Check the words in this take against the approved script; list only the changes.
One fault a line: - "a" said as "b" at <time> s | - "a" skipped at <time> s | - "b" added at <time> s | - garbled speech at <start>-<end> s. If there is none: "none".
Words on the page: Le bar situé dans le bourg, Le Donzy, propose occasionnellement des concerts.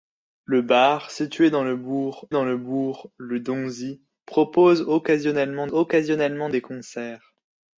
- "dans" added at 2.3 s
- "bourg Le" added at 2.6 s
- "occasionnellement" added at 5.7 s